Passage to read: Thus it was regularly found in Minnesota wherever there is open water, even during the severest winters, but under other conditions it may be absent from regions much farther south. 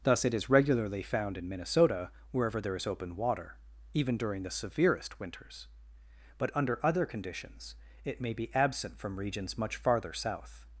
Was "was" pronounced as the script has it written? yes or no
no